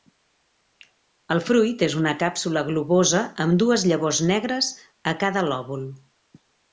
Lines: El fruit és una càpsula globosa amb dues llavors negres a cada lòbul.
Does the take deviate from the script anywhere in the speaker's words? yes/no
no